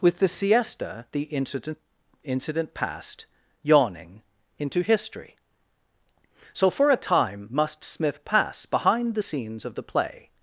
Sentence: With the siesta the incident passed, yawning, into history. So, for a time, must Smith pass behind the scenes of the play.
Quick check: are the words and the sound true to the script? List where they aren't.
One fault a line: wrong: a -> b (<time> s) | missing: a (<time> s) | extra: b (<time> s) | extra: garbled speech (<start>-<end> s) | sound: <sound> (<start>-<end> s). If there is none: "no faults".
extra: incident (2.2 s)